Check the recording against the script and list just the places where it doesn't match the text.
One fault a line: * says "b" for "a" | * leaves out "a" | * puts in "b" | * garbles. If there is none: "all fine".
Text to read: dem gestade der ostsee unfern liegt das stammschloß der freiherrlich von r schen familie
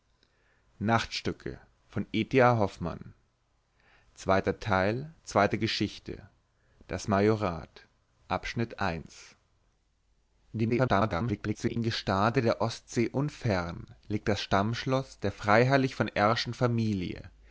* garbles